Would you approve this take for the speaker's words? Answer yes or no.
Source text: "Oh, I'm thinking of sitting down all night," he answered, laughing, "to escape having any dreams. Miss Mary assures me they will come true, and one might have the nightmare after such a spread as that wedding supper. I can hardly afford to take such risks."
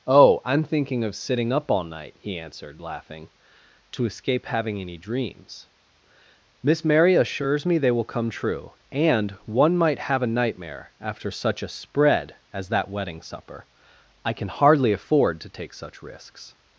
no